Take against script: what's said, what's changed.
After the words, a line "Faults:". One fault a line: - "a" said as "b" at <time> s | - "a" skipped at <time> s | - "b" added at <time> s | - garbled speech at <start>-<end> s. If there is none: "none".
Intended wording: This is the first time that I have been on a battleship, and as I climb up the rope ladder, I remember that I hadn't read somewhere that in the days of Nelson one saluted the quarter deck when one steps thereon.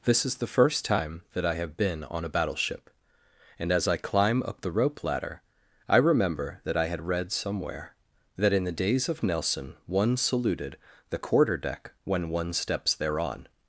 This is the first time that I have been on a battleship, and as I climb up the rope ladder, I remember that I had read somewhere that in the days of Nelson one saluted the quarter deck when one steps thereon.
Faults:
- "hadn't" said as "had" at 6.9 s